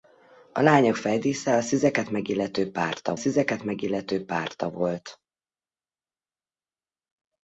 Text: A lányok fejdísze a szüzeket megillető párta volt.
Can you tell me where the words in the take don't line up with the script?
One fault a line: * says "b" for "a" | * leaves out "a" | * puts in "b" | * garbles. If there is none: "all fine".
* puts in "szüzeket megillető párta"